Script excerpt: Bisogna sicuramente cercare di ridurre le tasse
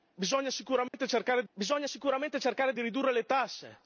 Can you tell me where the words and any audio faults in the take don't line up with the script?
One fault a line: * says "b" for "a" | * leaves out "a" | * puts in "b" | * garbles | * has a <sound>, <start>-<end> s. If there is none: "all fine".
* has a dropout, 0.9-0.9 s
* puts in "bisogna sicuramente cercare"